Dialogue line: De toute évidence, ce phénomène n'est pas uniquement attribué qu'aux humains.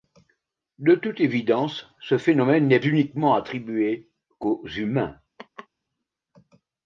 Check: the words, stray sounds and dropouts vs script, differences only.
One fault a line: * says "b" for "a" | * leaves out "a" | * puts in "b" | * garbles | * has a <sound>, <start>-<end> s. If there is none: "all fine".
* leaves out "pas"
* has a laugh, 5.4-5.7 s